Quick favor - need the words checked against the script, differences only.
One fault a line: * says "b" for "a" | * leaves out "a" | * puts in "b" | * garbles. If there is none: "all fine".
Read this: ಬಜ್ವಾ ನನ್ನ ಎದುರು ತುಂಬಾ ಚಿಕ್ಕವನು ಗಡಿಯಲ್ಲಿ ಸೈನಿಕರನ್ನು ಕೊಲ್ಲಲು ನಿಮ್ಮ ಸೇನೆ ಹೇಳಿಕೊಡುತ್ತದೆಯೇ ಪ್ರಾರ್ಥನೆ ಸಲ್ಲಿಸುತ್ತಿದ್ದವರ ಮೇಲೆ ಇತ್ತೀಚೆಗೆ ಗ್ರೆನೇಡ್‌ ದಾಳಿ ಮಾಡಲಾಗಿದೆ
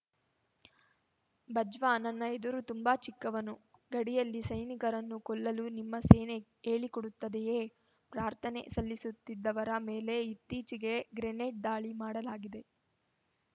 all fine